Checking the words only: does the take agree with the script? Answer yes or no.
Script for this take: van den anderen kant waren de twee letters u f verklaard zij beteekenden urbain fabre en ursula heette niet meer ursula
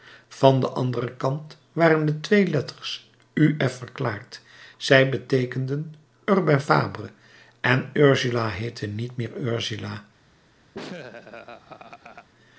yes